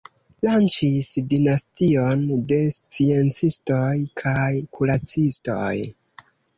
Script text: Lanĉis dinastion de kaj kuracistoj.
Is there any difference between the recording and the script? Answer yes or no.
yes